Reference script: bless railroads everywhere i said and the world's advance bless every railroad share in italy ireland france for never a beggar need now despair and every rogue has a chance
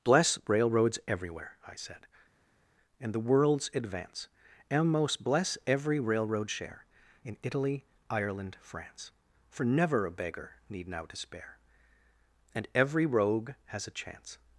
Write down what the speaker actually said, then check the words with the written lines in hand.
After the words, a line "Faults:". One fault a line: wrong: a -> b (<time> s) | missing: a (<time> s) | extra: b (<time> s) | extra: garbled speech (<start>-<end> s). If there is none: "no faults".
bless railroads everywhere i said and the world's advance and most bless every railroad share in italy ireland france for never a beggar need now despair and every rogue has a chance
Faults:
extra: and most (4.7 s)